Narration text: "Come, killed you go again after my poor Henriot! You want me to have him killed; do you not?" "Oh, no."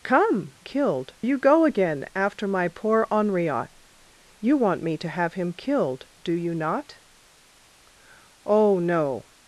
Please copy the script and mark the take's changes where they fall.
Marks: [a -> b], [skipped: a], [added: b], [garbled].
"Come, killed you go again after my poor Henriot! You want me to have him killed; do you not?" "Oh, no."